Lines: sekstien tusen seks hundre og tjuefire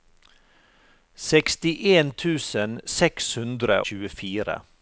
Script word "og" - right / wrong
wrong